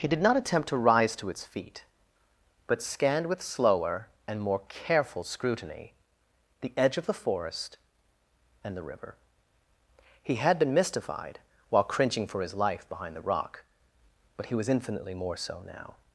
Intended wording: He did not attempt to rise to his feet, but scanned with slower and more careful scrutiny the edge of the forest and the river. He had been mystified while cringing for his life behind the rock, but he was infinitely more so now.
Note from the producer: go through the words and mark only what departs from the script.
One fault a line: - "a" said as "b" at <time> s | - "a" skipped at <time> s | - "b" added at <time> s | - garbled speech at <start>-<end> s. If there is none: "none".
- "his" said as "its" at 1.3 s